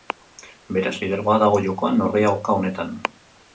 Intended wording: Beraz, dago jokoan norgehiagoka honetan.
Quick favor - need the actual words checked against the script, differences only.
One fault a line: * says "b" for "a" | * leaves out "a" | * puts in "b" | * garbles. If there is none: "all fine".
* puts in "lidergoa"